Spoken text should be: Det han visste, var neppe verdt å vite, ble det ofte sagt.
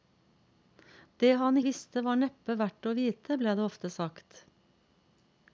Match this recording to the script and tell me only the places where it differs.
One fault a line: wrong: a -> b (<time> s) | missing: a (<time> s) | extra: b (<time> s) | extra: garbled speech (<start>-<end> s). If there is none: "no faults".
no faults